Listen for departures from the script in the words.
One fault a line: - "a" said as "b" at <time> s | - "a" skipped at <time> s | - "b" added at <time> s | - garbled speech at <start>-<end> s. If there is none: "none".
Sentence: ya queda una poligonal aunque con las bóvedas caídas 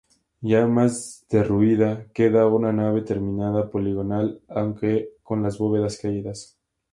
- "más derruida" added at 0.7 s
- "nave terminada" added at 2.7 s